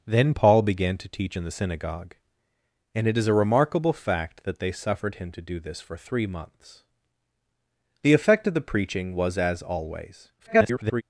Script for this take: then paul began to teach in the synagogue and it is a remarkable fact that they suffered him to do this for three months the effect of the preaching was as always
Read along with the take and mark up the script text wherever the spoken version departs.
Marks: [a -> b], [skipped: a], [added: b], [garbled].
then paul began to teach in the synagogue and it is a remarkable fact that they suffered him to do this for three months the effect of the preaching was as always [garbled]